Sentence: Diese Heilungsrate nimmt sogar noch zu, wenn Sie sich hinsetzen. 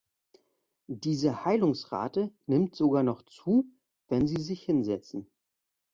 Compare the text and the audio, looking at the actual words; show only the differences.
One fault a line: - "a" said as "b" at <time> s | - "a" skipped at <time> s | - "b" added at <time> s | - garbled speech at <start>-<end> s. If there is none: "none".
none